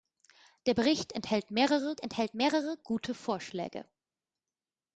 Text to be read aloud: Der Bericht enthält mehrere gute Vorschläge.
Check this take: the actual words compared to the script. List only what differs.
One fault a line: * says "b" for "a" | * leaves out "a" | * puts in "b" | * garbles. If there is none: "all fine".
* puts in "enthält mehrere"